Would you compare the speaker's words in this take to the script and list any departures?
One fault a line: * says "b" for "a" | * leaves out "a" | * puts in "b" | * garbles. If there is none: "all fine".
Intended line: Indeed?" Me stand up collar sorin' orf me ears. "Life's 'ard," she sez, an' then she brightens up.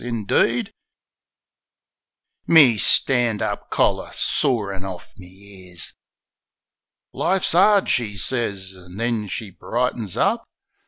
all fine